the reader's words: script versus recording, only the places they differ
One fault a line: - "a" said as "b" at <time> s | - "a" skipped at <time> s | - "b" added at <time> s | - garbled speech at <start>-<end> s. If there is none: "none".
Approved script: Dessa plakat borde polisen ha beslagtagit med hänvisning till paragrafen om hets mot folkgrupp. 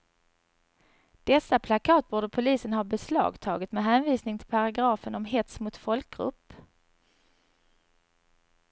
none